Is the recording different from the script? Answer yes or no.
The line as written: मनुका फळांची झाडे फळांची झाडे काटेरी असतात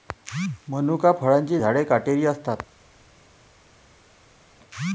yes